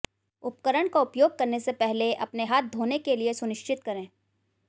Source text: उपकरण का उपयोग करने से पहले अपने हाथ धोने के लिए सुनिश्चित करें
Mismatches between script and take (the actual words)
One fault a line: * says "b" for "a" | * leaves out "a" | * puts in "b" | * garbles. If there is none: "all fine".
all fine